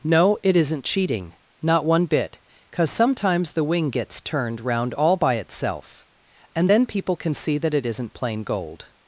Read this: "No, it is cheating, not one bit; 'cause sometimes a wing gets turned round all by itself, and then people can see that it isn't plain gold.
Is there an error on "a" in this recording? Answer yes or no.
yes